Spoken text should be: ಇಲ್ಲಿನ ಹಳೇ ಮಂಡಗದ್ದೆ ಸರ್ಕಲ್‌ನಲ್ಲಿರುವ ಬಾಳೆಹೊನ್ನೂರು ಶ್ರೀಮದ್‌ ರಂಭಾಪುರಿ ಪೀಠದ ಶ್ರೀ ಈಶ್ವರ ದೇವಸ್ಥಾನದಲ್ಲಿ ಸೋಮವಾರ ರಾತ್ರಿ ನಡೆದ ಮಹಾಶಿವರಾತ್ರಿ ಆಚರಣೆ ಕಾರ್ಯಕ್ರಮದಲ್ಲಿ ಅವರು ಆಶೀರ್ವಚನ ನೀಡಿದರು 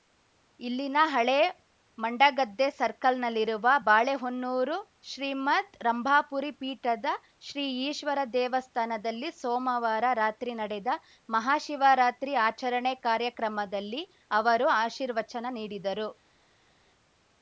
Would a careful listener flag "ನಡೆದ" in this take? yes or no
no